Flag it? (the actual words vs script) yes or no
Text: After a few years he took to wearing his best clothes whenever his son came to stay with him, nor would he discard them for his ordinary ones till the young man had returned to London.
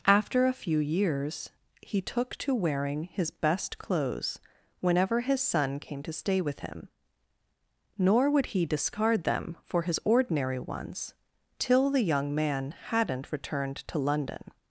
yes